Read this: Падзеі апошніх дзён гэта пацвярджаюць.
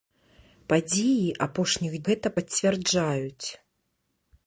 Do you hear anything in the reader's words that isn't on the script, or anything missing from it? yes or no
yes